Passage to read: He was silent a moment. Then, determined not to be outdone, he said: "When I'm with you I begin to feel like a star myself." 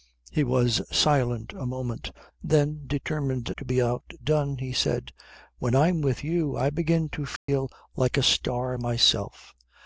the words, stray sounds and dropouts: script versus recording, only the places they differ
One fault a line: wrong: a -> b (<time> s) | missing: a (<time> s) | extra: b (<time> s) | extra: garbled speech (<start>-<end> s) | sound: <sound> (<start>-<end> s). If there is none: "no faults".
missing: not (3.5 s)
sound: dropout (7.4-7.5 s)